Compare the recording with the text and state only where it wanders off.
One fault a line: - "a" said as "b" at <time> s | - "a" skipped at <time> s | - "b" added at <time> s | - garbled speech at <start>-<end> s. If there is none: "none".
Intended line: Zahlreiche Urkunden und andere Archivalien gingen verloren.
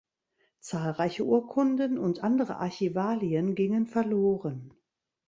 none